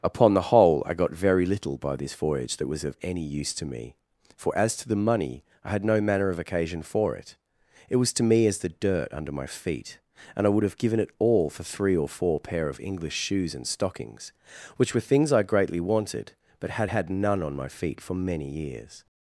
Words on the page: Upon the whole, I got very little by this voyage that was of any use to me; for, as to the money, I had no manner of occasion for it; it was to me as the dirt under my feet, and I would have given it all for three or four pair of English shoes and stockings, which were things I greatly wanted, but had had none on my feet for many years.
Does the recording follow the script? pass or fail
pass